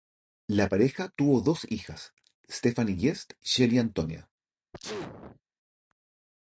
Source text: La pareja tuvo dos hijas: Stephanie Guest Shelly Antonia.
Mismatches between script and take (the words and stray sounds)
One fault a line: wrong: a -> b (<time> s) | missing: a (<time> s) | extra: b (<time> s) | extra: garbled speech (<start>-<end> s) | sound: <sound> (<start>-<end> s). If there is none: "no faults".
sound: sneeze (4.7-5.4 s)